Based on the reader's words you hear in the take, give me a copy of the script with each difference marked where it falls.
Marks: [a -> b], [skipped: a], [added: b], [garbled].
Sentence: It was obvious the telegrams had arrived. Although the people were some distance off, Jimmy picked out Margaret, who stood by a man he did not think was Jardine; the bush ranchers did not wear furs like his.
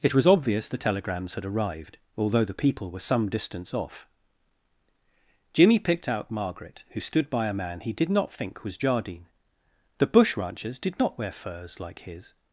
It was obvious the telegrams had arrived. Although the people were some distance off, Jimmy picked out Margaret, who stood by a man he did not think was Jardine; the bush ranchers did not wear furs like his.